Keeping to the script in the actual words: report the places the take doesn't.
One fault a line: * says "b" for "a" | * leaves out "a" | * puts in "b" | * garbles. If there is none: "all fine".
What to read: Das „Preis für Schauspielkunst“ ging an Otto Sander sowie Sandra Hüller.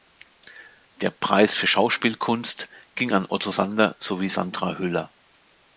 * says "Der" for "Das"